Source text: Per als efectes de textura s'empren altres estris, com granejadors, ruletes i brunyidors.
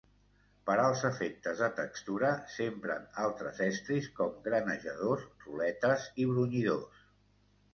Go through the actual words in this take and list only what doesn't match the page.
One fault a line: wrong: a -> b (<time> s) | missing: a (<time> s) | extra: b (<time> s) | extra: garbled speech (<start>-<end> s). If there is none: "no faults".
no faults